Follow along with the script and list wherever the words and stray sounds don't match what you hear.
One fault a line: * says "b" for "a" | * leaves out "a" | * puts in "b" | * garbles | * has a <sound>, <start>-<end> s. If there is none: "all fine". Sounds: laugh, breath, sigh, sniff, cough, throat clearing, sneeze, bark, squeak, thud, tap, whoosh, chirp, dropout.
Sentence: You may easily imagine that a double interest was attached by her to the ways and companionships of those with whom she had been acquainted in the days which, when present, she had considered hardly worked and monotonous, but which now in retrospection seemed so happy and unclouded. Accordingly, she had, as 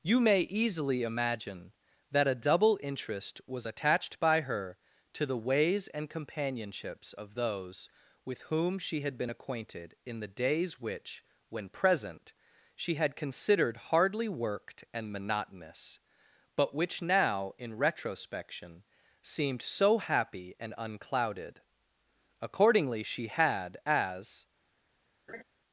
* has a laugh, 25.3-25.4 s